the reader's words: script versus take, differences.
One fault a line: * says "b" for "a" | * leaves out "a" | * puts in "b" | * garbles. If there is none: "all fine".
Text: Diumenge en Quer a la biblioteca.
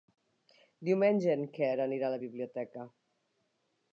* puts in "anirà"